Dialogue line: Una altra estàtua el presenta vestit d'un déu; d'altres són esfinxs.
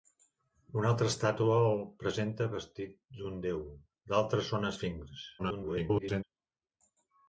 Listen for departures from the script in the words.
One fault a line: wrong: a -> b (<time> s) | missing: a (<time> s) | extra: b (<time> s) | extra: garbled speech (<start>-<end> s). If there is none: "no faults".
extra: garbled speech (5.4-6.2 s)